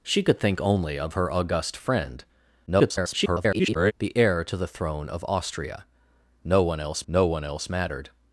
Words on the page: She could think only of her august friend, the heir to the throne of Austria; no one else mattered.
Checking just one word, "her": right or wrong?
right